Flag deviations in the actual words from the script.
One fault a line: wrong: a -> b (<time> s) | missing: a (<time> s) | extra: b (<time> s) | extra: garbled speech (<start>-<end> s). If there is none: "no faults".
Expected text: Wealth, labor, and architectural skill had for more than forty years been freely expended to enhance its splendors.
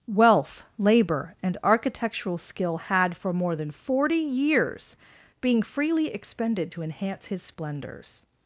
wrong: been -> being (5.4 s)
wrong: its -> his (7.3 s)